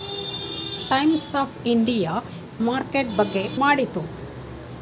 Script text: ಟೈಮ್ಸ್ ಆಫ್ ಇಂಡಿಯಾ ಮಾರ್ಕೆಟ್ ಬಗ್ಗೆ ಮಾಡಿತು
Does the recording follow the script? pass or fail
pass